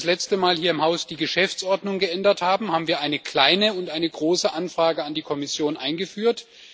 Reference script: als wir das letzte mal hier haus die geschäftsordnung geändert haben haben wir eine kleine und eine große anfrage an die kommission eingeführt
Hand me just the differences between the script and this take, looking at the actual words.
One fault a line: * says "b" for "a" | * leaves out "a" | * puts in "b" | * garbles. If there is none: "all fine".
* puts in "im"